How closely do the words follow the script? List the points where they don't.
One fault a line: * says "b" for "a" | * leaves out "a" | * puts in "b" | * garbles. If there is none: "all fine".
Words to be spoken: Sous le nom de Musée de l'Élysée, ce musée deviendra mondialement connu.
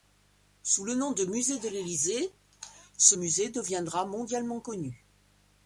all fine